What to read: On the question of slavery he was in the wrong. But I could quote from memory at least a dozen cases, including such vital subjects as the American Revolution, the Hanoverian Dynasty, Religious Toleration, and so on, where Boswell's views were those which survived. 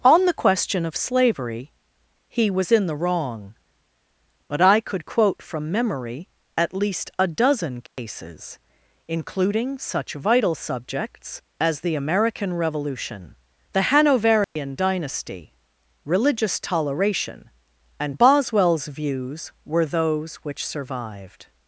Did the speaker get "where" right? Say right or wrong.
wrong